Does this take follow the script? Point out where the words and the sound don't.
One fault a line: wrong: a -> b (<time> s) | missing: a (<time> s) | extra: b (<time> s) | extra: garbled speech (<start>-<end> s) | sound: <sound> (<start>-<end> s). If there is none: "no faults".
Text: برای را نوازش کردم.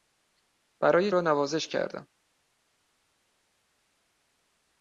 no faults